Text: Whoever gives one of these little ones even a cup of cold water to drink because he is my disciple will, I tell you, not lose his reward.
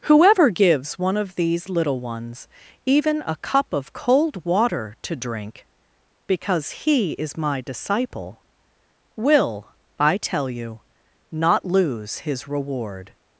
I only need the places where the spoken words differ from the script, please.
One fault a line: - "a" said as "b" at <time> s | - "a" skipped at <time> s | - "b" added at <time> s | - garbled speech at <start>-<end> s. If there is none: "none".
none